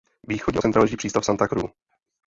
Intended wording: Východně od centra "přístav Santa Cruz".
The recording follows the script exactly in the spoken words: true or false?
false